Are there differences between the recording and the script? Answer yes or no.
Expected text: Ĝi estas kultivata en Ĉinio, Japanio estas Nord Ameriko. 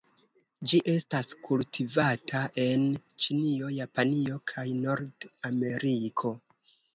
yes